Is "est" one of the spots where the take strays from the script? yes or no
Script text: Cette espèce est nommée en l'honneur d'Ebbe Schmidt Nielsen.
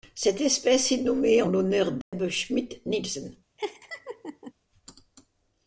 no